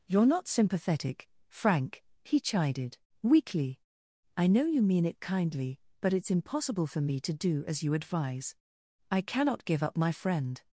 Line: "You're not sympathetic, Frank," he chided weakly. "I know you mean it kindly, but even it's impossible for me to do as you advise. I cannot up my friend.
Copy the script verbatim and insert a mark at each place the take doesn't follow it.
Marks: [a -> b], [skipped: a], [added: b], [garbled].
"You're not sympathetic, Frank," he chided weakly. "I know you mean it kindly, but [skipped: even] it's impossible for me to do as you advise. I cannot [added: give] up my friend.